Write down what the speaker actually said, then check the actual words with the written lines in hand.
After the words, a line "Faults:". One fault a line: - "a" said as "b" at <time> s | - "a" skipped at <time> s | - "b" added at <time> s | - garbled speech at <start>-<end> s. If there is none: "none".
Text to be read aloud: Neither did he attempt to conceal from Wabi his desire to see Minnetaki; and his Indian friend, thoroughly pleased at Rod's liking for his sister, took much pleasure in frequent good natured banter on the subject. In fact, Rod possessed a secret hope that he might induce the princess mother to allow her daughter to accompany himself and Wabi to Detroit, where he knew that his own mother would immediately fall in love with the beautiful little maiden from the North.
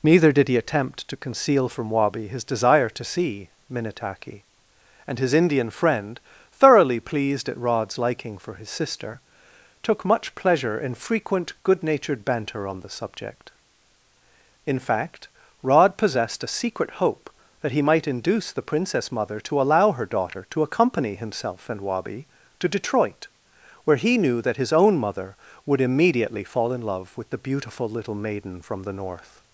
Neither did he attempt to conceal from Wabi his desire to see Minnetaki; and his Indian friend, thoroughly pleased at Rod's liking for his sister, took much pleasure in frequent good natured banter on the subject. In fact, Rod possessed a secret hope that he might induce the princess mother to allow her daughter to accompany himself and Wabi to Detroit, where he knew that his own mother would immediately fall in love with the beautiful little maiden from the North.
Faults:
none